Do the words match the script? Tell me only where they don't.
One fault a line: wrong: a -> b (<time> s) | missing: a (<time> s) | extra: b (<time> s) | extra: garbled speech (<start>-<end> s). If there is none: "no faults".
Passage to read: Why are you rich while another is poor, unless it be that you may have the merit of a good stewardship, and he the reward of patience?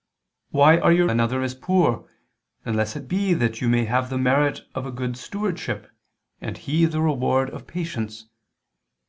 missing: rich while (1.1 s)